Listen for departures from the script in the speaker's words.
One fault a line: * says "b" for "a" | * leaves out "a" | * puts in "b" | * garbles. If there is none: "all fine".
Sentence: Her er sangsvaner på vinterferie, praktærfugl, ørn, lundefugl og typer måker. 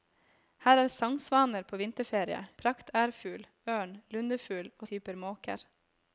all fine